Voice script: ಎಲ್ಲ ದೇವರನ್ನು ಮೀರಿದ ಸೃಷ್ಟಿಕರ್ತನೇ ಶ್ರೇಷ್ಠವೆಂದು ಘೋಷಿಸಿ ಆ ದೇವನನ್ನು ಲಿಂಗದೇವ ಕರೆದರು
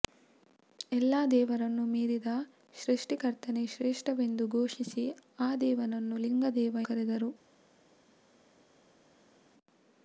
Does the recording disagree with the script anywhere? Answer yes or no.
no